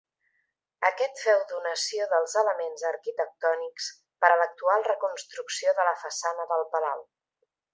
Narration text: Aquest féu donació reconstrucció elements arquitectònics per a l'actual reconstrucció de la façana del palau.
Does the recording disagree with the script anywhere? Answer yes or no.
yes